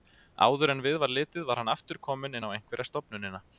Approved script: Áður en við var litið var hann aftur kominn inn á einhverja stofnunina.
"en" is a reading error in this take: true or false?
false